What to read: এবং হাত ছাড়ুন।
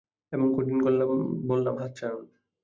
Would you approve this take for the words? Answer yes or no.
no